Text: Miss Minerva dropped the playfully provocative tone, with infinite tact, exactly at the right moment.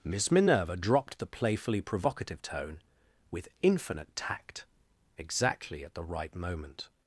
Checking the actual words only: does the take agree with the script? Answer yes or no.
yes